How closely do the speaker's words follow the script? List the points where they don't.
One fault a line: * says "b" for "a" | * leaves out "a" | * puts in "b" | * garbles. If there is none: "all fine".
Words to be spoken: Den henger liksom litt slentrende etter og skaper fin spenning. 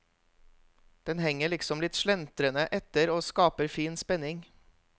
all fine